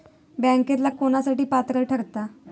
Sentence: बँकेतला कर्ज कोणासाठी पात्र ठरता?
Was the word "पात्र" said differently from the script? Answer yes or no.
no